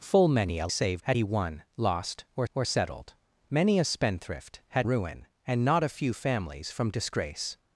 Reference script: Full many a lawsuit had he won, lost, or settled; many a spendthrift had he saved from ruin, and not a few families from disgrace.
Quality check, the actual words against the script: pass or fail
fail